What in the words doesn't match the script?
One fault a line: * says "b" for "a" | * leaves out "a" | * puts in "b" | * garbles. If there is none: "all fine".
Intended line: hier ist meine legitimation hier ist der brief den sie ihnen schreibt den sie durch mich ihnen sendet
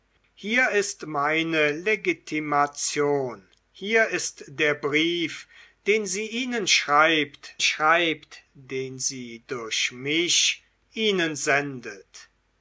* puts in "schreibt"